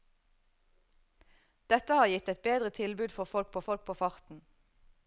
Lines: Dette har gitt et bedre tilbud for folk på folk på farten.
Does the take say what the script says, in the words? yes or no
yes